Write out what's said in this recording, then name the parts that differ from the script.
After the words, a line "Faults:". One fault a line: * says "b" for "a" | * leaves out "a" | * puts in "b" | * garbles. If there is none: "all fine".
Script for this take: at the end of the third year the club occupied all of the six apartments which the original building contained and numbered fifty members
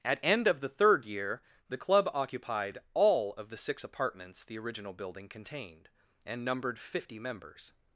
at end of the third year the club occupied all of the six apartments the original building contained and numbered fifty members
Faults:
* leaves out "the"
* leaves out "which"